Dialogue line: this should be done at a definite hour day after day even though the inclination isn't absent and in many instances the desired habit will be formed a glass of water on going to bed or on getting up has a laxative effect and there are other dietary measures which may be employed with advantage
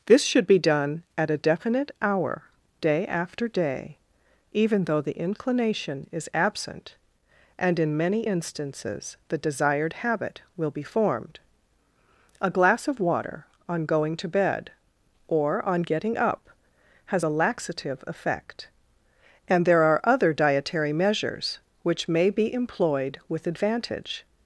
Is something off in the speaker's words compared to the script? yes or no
yes